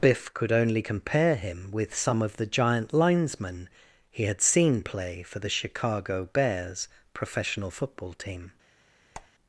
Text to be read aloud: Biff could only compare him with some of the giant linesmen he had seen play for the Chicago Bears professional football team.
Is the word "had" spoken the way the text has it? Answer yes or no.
yes